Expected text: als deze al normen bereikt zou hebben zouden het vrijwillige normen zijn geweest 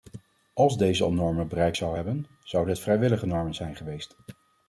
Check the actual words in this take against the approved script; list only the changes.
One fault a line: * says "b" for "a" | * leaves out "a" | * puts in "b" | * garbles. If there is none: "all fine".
all fine